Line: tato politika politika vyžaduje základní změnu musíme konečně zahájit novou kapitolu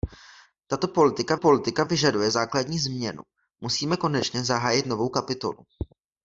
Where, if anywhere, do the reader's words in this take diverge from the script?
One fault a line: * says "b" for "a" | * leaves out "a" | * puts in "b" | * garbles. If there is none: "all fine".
all fine